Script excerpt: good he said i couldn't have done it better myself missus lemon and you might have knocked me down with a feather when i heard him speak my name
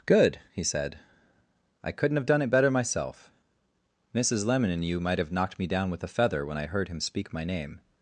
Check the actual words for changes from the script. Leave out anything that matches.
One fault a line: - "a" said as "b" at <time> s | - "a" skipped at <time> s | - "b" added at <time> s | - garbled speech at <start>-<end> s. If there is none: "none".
none